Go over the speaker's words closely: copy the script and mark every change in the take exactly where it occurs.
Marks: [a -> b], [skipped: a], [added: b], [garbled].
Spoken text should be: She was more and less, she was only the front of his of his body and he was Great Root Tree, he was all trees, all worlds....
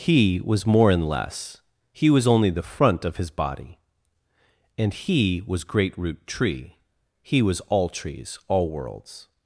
[She -> He] was more and less, [she -> he] was only the front of his [skipped: of his] body and he was Great Root Tree, he was all trees, all worlds....